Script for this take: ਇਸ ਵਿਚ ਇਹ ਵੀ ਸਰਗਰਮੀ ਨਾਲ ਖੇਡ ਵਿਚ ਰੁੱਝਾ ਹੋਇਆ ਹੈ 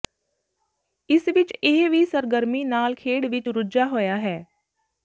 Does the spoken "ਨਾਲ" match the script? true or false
true